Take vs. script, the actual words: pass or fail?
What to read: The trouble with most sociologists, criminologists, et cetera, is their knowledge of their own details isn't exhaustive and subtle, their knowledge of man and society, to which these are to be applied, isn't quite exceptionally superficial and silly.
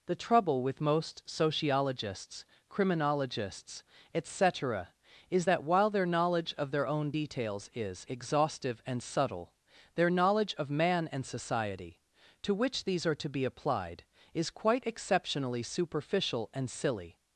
fail